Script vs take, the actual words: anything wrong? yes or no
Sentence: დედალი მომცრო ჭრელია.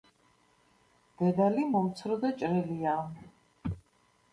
yes